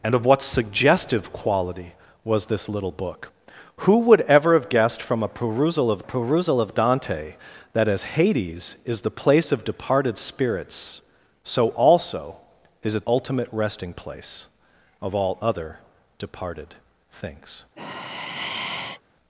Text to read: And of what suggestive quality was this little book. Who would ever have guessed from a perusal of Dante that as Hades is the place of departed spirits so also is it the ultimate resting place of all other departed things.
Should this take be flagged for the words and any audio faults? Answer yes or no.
yes